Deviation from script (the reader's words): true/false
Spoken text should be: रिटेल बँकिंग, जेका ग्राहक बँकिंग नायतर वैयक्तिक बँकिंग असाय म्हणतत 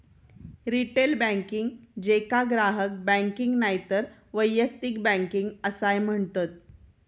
false